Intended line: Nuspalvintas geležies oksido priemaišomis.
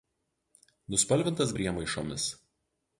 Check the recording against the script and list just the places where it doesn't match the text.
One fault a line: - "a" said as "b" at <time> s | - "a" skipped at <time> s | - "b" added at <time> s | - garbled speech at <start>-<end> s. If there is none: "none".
- "geležies oksido" skipped at 1.5 s